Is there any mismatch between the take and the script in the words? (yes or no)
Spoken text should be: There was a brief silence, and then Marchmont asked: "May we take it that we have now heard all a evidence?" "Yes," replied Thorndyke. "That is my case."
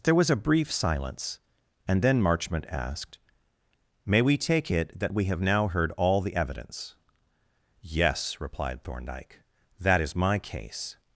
yes